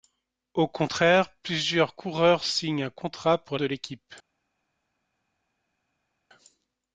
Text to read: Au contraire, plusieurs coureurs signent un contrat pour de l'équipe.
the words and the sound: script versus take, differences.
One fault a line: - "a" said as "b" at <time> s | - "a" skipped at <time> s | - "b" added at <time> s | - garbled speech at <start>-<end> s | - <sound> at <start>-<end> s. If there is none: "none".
none